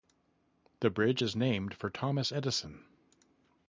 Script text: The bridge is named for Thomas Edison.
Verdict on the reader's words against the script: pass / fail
pass